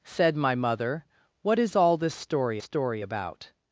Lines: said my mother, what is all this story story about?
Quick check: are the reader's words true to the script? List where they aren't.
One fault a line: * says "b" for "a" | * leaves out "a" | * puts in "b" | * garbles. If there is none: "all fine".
all fine